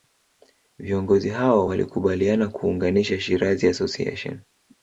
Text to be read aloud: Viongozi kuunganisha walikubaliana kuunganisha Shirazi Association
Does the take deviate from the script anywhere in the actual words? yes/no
yes